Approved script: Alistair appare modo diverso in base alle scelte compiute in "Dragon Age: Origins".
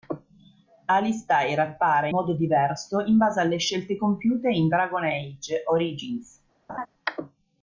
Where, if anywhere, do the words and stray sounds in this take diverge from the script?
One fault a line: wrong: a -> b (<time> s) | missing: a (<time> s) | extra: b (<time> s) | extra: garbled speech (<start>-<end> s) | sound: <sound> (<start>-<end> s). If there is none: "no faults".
sound: laugh (6.7-6.9 s)